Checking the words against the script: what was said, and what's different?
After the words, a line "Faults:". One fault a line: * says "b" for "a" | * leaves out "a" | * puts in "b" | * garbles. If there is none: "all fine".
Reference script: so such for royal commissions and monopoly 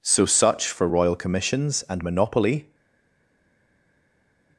so such for royal commissions and monopoly
Faults:
all fine